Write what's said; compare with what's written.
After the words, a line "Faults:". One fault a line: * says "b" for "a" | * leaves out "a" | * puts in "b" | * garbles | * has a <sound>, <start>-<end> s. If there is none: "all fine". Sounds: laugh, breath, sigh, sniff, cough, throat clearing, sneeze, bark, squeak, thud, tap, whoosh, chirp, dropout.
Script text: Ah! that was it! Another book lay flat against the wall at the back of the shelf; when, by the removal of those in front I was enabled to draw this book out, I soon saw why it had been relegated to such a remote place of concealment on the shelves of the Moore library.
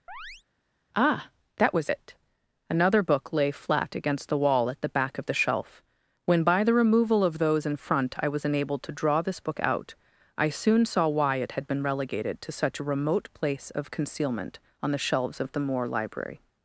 Ah! that was it! Another book lay flat against the wall at the back of the shelf; when, by the removal of those in front I was enabled to draw this book out, I soon saw why it had been relegated to such a remote place of concealment on the shelves of the Moore library.
Faults:
* has a chirp, 0.1-0.4 s